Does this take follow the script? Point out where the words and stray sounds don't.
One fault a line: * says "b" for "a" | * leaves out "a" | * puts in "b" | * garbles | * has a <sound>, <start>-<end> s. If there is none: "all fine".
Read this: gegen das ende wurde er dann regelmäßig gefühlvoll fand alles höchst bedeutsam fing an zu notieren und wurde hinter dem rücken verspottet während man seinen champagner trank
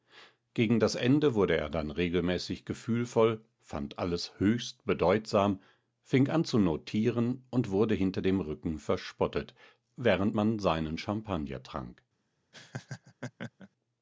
* has a laugh, 12.5-13.7 s